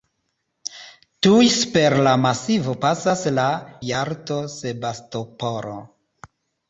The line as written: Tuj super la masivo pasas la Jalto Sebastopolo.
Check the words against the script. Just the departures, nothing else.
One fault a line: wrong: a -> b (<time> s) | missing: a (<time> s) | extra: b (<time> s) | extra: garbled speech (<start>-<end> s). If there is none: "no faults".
no faults